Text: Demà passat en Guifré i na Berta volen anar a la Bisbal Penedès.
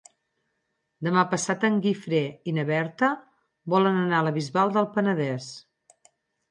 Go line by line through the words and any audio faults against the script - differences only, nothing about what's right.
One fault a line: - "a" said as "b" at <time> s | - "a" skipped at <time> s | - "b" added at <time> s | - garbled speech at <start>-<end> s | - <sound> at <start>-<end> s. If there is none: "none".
- "del" added at 4.8 s